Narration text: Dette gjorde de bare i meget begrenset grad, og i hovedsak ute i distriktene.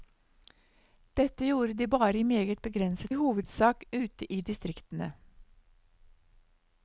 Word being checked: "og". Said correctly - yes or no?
no